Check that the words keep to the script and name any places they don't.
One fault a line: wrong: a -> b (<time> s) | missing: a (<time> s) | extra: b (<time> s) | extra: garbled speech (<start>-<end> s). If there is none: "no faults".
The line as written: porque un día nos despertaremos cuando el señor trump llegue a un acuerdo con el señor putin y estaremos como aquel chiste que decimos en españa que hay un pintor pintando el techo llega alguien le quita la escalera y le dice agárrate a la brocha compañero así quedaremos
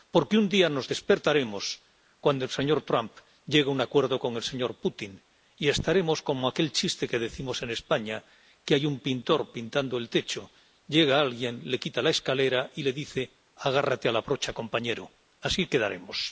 no faults